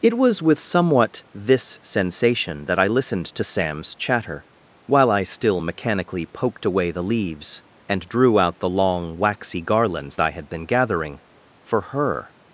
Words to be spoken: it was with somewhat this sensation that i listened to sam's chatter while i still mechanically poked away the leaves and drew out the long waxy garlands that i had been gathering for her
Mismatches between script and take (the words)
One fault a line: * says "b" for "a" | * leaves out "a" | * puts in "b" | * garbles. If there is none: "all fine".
* leaves out "that"